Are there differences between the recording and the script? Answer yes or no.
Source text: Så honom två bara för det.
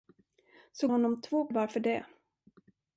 no